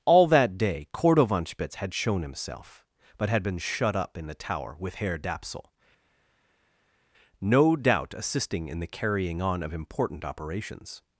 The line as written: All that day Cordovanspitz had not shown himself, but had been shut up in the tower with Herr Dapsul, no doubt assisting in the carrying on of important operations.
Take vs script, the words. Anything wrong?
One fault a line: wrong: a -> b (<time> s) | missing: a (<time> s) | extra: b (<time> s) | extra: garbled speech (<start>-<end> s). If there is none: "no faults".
missing: not (1.9 s)